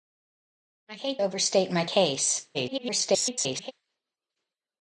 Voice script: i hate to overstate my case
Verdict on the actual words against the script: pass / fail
fail